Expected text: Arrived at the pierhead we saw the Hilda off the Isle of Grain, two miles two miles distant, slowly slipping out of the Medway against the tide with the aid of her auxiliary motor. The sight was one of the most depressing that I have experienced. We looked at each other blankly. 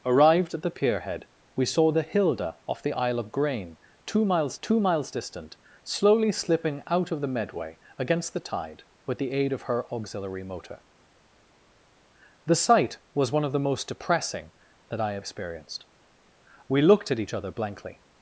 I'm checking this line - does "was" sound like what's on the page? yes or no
yes